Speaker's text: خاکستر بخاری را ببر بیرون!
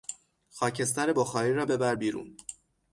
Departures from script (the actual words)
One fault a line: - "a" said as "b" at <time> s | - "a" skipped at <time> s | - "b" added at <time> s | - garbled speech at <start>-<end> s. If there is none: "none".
none